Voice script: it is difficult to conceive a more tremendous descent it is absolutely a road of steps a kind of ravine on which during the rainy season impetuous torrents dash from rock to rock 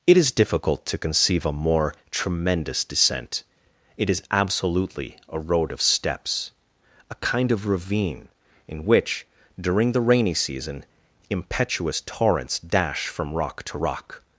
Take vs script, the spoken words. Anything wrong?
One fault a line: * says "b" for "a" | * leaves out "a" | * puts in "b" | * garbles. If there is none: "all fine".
* says "in" for "on"